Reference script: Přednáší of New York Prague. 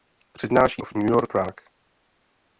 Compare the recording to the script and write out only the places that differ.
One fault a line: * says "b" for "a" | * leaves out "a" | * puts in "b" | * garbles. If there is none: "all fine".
all fine